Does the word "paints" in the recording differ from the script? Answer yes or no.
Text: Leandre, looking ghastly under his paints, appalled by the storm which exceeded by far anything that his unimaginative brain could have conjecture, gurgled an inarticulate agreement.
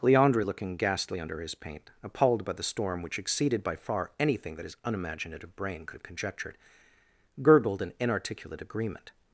yes